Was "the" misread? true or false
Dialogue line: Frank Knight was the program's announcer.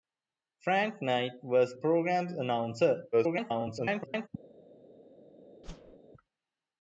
true